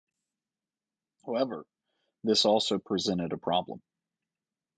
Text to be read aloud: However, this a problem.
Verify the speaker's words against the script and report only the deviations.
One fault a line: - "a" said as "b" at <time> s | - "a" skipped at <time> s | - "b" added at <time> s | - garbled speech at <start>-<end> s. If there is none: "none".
- "also presented" added at 2.4 s